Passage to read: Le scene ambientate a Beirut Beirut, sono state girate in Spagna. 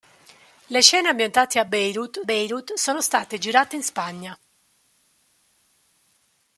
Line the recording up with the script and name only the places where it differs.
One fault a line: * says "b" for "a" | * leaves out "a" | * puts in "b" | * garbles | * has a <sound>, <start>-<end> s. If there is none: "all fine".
all fine